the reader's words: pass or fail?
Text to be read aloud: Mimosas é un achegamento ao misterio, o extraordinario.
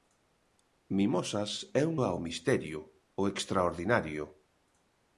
fail